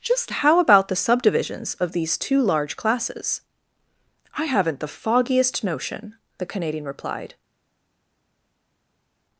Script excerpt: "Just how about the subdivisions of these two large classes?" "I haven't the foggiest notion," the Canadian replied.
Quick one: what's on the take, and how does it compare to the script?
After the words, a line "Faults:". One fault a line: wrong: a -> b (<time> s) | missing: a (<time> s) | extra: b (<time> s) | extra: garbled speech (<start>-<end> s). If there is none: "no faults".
"Just how about the subdivisions of these two large classes?" "I haven't the foggiest notion," the Canadian replied.
Faults:
no faults